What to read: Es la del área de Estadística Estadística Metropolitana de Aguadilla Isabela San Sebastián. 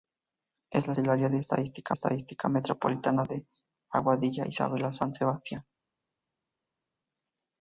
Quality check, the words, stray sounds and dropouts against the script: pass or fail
pass